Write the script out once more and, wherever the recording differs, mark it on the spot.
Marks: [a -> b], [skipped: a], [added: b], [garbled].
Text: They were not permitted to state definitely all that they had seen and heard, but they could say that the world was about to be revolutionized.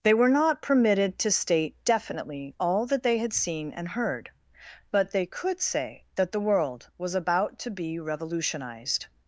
They were not permitted to state definitely all that they had seen and heard, but they could say that the world was about to be revolutionized.